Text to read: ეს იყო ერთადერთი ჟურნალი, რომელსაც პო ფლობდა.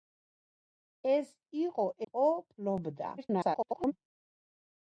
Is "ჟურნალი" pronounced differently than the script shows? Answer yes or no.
yes